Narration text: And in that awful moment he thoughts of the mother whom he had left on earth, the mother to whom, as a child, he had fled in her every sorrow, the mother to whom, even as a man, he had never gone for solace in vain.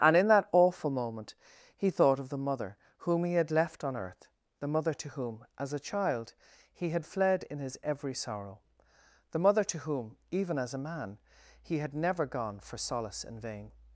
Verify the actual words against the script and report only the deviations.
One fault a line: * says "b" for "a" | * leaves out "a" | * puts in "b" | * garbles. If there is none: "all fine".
* says "thought" for "thoughts"
* says "his" for "her"